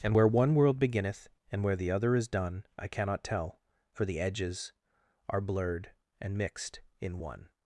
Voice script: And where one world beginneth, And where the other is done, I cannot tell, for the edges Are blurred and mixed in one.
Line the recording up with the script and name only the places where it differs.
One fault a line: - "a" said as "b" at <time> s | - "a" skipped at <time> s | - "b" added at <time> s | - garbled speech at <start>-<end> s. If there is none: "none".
none